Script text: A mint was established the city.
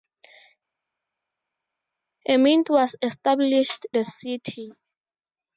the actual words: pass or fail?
pass